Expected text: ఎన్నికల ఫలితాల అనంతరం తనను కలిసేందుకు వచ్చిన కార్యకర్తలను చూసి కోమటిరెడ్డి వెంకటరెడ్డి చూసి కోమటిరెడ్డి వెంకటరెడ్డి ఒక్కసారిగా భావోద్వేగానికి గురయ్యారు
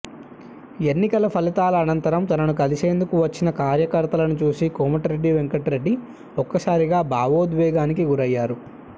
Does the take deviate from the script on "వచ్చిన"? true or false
false